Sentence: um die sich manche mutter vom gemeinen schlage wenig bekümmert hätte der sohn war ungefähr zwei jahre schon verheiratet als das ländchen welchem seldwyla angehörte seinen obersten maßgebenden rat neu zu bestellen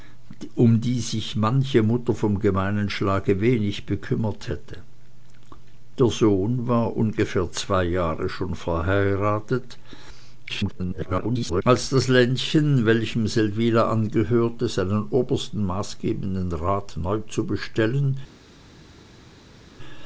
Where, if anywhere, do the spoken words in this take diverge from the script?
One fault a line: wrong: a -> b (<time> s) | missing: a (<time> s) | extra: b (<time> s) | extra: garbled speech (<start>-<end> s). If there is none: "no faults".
extra: garbled speech (10.5-11.6 s)